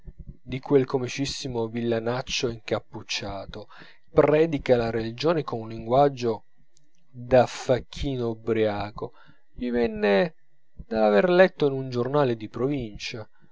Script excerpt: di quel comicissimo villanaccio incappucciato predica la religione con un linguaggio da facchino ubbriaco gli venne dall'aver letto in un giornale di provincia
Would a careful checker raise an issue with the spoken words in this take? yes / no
no